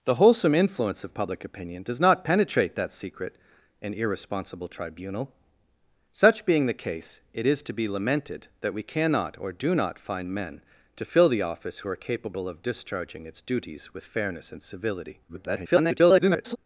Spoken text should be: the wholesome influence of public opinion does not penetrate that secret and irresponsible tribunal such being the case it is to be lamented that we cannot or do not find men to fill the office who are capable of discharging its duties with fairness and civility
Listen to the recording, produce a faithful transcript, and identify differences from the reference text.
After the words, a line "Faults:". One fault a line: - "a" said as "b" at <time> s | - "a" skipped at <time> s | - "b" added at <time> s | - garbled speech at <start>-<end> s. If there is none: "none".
the wholesome influence of public opinion does not penetrate that secret and irresponsible tribunal such being the case it is to be lamented that we cannot or do not find men to fill the office who are capable of discharging its duties with fairness and civility [garbled]
Faults:
- garbled speech at 15.3-16.6 s